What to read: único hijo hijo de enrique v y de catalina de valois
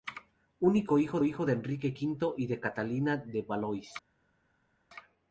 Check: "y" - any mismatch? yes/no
no